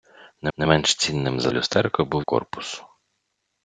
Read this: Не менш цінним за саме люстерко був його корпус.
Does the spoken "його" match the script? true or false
false